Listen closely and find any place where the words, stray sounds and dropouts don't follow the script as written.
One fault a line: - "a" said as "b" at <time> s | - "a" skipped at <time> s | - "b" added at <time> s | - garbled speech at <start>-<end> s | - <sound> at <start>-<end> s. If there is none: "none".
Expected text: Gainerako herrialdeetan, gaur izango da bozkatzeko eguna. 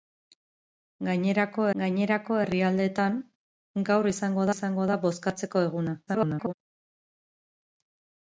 - "gainerako" added at 1.8 s
- "izango" added at 4.5 s
- garbled speech at 6.1-6.5 s